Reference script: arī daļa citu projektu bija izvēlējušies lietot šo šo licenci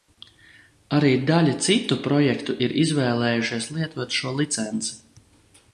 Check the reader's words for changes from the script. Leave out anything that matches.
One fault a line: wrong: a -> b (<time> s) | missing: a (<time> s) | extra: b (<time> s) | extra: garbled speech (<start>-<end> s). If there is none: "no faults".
wrong: bija -> ir (2.7 s)
missing: šo (4.3 s)